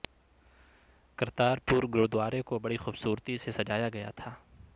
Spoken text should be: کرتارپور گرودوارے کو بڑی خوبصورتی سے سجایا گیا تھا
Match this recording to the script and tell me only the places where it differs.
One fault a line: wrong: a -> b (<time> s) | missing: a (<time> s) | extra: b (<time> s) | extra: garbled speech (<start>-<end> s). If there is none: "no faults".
no faults